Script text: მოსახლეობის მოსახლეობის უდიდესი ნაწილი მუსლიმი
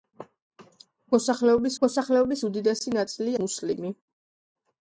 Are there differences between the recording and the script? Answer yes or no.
no